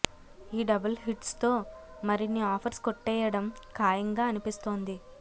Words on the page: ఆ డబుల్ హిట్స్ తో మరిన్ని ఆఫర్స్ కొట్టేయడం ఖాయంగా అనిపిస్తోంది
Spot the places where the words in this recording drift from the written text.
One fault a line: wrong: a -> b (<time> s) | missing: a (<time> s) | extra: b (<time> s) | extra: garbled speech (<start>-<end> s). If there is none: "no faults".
wrong: ఆ -> ఈ (0.5 s)